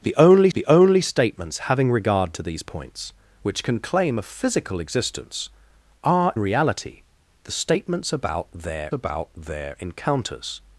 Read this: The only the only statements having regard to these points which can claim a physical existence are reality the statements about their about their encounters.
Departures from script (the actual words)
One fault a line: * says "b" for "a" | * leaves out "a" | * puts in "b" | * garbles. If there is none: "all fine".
all fine